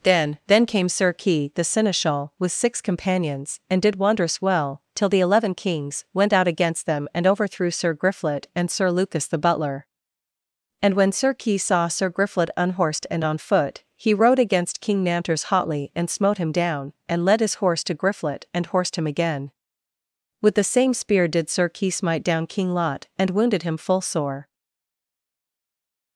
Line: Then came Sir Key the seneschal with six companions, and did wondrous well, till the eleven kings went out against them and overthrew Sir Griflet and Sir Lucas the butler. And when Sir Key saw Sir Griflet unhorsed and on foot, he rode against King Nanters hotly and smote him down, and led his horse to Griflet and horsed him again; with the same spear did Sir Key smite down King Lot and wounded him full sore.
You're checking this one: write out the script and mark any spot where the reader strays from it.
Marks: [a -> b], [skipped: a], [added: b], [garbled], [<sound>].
Then [added: then] came Sir Key the seneschal with six companions, and did wondrous well, till the eleven kings went out against them and overthrew Sir Griflet and Sir Lucas the butler. And when Sir Key saw Sir Griflet unhorsed and on foot, he rode against King Nanters hotly and smote him down, and led his horse to Griflet and horsed him again; with the same spear did Sir Key smite down King Lot and wounded him full sore.